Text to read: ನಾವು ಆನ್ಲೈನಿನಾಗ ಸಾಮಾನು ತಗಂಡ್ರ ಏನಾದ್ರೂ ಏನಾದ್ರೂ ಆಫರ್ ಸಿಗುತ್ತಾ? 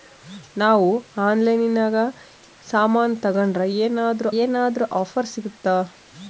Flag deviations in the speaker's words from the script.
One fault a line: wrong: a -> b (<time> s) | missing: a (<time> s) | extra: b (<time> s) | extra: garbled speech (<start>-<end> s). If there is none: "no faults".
no faults